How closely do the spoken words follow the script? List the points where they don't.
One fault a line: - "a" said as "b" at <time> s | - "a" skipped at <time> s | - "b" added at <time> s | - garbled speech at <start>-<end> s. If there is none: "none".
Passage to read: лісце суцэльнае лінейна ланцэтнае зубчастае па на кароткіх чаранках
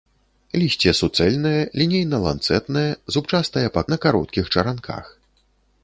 none